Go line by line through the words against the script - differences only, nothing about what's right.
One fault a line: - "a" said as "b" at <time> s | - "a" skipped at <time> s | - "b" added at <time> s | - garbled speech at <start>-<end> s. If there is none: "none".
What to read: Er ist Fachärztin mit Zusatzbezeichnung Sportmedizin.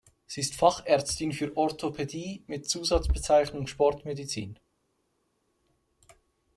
- "Er" said as "Sie" at 0.2 s
- "für Orthopädie" added at 1.3 s